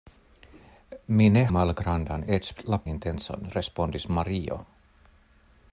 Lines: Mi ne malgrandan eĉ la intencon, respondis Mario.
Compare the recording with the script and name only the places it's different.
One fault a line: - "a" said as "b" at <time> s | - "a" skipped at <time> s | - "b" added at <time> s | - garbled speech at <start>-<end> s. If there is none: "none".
none